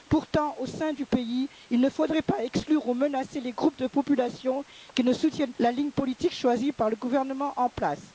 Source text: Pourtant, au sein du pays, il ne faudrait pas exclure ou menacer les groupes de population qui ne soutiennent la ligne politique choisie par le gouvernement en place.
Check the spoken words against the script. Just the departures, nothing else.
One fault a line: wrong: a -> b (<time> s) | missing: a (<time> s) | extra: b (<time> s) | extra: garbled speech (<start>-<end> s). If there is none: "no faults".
no faults